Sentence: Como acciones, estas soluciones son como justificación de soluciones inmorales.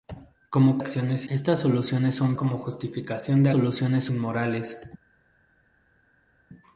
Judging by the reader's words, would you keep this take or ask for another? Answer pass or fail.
pass